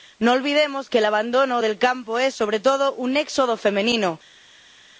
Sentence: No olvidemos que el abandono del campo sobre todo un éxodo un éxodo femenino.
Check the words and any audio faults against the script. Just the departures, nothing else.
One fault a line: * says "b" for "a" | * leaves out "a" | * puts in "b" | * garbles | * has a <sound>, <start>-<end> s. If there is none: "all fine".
* puts in "es"
* leaves out "un éxodo"